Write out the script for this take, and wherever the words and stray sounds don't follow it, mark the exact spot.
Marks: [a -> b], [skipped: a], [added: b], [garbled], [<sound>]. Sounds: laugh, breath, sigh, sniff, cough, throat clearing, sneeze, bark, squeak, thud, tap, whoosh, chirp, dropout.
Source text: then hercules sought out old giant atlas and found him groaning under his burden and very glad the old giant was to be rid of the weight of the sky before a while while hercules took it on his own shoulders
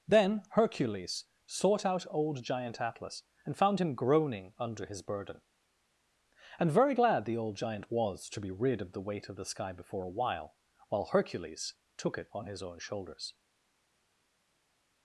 then hercules sought out old giant atlas and found him groaning under his burden and very glad the old giant was to be rid of the weight of the sky before a while while hercules took it on his own shoulders